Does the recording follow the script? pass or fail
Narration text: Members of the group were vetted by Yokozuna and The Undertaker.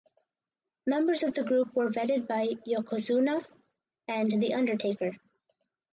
pass